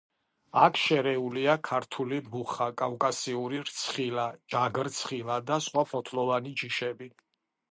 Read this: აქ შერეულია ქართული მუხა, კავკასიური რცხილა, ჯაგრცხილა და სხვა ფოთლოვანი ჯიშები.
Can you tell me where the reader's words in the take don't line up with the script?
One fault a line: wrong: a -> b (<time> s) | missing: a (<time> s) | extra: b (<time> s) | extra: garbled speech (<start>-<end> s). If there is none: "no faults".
no faults